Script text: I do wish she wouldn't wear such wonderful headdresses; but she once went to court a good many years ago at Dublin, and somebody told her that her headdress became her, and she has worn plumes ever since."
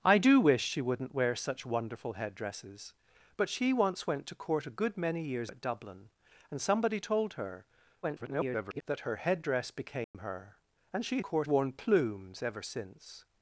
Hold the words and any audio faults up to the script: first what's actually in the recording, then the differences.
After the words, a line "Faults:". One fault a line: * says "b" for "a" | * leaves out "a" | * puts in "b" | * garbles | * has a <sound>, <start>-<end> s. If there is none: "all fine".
I do wish she wouldn't wear such wonderful headdresses; but she once went to court a good many years at Dublin, and somebody told her [garbled] that her headdress became her, and she court worn plumes ever since."
Faults:
* leaves out "ago"
* garbles
* has a dropout, 10.0-10.1 s
* says "court" for "has"